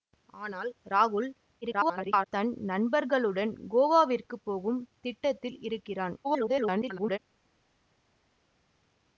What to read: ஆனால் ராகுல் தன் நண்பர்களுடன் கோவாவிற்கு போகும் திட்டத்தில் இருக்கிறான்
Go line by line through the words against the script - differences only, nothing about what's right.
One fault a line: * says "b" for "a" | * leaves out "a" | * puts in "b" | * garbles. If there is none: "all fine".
* garbles
* garbles